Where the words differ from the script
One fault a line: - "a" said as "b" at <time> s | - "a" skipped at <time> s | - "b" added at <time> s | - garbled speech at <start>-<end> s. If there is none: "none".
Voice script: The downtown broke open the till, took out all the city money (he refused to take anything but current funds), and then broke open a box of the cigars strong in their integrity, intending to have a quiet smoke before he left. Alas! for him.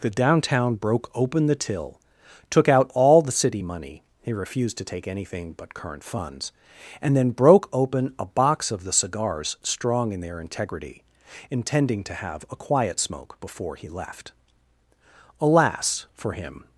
none